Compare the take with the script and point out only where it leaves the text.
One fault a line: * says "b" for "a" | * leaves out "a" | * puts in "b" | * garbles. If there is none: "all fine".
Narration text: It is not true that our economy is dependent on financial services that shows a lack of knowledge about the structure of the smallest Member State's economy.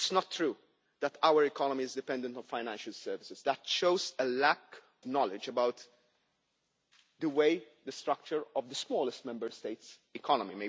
* leaves out "of"